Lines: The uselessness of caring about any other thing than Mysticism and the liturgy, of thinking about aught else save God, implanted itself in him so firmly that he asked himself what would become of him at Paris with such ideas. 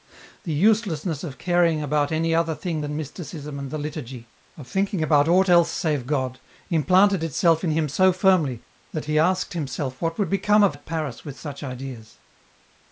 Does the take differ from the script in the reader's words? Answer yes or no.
yes